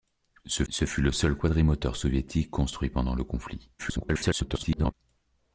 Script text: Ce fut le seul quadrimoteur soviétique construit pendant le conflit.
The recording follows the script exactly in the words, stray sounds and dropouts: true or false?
false